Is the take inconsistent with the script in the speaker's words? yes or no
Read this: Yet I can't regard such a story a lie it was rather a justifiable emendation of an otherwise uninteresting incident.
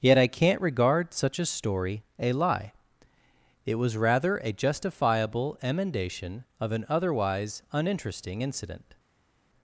no